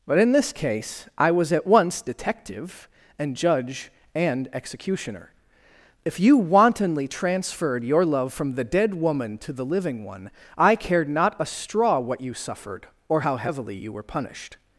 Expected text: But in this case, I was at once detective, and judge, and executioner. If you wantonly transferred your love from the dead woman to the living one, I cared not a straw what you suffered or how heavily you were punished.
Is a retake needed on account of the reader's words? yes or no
no